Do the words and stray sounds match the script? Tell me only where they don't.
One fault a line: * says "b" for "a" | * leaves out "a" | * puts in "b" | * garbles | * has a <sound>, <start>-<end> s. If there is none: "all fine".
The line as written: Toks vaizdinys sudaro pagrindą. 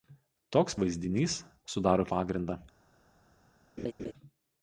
* has a laugh, 3.8-4.1 s